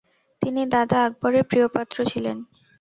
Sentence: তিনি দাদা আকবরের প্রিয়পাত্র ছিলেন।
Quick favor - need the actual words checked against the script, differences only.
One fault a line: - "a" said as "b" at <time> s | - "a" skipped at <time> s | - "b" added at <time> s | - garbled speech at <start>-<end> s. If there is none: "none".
none